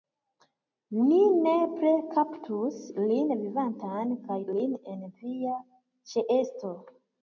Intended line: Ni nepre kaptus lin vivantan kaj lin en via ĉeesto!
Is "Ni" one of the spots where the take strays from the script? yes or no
no